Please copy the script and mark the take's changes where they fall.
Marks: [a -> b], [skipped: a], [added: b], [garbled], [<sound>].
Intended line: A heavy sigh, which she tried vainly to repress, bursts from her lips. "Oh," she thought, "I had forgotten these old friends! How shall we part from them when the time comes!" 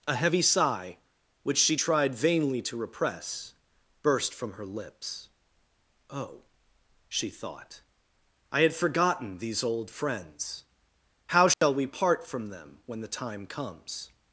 A heavy sigh, which she tried vainly to repress, [bursts -> burst] from her lips. "Oh," she thought, "I had forgotten these old friends! How shall [dropout] we part from them when the time comes!"